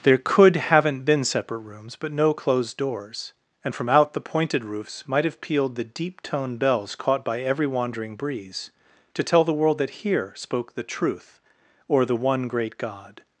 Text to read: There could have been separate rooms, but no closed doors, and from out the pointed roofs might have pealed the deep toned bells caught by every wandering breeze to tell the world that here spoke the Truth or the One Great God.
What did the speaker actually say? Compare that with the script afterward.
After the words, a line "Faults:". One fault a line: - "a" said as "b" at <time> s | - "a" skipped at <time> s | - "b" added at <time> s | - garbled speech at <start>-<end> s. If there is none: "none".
There could haven't been separate rooms, but no closed doors, and from out the pointed roofs might have pealed the deep toned bells caught by every wandering breeze to tell the world that here spoke the Truth or the One Great God.
Faults:
- "have" said as "haven't" at 0.6 s